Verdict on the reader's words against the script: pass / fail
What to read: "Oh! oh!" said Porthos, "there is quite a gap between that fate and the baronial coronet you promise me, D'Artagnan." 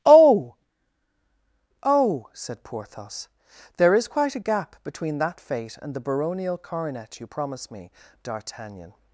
pass